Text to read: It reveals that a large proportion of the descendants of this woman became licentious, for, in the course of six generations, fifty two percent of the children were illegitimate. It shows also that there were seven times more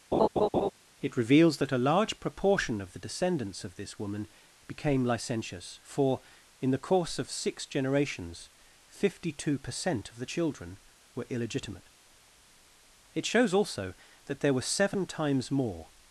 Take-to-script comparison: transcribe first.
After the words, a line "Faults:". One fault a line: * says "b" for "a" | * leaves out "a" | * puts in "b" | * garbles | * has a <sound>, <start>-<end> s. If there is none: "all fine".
It reveals that a large proportion of the descendants of this woman became licentious, for, in the course of six generations, fifty two percent of the children were illegitimate. It shows also that there were seven times more
Faults:
* has a laugh, 0.1-0.7 s